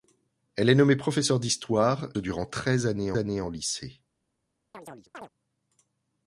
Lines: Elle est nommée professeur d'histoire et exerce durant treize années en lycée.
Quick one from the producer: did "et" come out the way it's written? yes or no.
no